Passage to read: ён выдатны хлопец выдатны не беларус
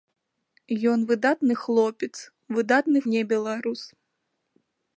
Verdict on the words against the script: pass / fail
pass